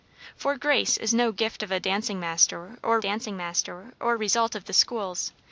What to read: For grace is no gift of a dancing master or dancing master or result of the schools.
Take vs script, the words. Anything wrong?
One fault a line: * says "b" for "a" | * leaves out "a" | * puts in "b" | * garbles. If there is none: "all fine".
all fine